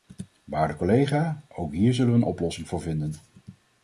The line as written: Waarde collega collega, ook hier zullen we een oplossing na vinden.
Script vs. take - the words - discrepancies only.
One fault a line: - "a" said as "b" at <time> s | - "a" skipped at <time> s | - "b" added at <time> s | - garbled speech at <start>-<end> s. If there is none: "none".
- "collega" skipped at 1.4 s
- "na" said as "voor" at 2.7 s